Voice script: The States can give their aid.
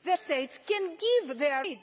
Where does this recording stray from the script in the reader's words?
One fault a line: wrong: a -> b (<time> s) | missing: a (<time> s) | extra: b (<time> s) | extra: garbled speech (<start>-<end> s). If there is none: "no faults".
no faults